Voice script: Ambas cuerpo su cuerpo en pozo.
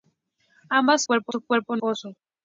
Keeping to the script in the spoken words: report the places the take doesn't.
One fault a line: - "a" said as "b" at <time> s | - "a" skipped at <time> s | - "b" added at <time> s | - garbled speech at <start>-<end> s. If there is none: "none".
none